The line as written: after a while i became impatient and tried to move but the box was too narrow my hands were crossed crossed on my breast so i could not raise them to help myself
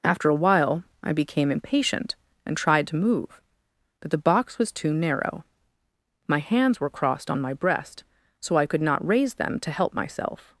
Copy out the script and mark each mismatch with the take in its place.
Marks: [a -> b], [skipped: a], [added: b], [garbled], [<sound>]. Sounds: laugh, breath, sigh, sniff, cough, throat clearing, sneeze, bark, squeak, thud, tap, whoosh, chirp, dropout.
after a while i became impatient and tried to move but the box was too narrow my hands were crossed [skipped: crossed] on my breast so i could not raise them to help myself